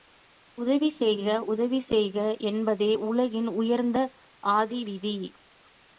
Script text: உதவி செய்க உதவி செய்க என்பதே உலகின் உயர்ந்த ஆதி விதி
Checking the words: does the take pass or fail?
pass